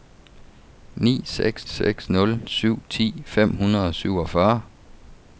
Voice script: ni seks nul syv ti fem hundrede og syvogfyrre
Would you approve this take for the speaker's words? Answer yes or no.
no